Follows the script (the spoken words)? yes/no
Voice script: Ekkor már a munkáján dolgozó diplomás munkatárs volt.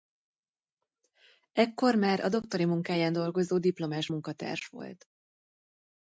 no